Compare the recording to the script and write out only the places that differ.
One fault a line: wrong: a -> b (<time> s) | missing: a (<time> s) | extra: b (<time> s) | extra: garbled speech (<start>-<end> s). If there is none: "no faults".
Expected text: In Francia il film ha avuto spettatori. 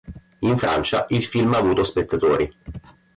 no faults